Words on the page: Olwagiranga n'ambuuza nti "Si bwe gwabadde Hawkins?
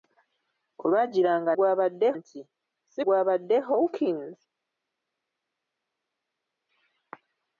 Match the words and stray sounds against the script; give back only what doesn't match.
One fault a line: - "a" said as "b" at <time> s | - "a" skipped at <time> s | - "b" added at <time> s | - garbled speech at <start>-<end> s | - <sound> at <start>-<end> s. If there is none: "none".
- "n'ambuuza" said as "gwabadde" at 1.5 s
- "bwe" skipped at 3.0 s